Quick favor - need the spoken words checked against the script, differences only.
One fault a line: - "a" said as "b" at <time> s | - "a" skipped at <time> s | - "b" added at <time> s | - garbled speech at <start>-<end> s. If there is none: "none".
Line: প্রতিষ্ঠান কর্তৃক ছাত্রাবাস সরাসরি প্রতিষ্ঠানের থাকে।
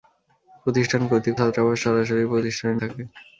none